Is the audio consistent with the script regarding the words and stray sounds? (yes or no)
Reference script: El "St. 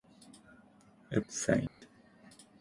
no